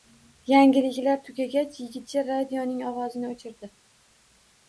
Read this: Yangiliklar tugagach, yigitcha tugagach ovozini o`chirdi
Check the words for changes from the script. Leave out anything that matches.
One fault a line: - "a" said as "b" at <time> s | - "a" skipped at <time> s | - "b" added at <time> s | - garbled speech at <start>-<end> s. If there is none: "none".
- "tugagach" said as "radioning" at 2.3 s